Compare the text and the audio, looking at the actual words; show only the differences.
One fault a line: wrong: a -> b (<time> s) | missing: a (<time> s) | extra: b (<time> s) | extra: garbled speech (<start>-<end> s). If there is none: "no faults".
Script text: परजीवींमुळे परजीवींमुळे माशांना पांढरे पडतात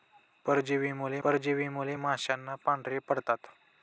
no faults